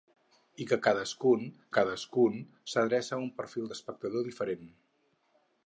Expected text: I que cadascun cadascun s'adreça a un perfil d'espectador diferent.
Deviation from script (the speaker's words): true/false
false